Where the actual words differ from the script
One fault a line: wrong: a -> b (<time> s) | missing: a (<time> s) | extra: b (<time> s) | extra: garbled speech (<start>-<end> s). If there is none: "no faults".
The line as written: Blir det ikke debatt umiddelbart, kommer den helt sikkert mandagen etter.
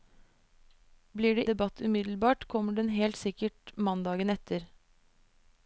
missing: ikke (1.4 s)